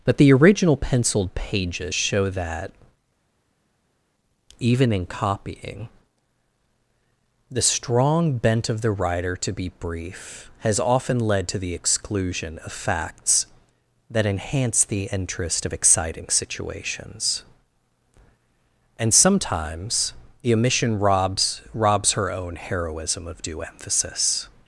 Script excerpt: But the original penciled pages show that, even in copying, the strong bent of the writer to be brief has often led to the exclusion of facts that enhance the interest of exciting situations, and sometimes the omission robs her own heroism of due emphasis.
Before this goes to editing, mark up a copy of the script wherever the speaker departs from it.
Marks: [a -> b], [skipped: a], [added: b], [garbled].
But the original penciled pages show that, even in copying, the strong bent of the writer to be brief has often led to the exclusion of facts that enhance the interest of exciting situations, and sometimes the omission robs [added: robs] her own heroism of due emphasis.